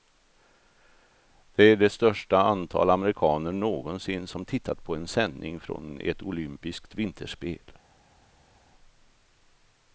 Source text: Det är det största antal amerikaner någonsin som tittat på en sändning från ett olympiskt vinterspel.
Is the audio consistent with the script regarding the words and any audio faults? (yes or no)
yes